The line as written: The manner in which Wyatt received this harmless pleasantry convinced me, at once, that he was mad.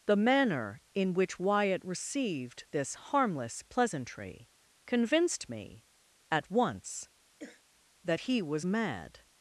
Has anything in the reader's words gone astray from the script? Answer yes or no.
no